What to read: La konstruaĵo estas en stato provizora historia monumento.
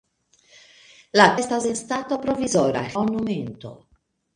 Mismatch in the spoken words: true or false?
true